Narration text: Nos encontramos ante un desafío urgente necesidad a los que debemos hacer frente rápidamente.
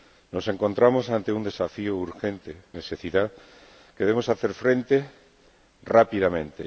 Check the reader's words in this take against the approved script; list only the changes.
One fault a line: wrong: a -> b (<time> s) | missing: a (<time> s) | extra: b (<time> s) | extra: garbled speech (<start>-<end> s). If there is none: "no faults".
no faults